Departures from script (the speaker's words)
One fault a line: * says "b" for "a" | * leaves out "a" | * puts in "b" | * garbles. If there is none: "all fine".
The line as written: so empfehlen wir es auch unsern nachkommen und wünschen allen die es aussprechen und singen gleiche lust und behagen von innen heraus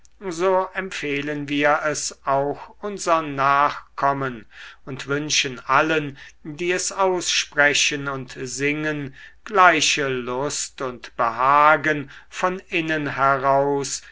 all fine